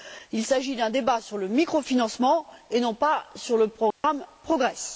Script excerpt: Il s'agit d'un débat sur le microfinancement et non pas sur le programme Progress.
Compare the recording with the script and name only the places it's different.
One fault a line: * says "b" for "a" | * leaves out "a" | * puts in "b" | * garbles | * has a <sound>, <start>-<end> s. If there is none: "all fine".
* has a dropout, 3.9-4.0 s